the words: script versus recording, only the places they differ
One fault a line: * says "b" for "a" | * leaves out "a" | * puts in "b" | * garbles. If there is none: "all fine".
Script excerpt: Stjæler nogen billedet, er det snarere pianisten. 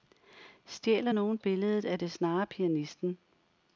all fine